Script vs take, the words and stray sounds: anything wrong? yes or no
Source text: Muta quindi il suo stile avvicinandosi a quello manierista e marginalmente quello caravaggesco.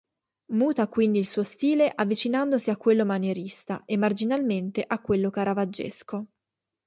yes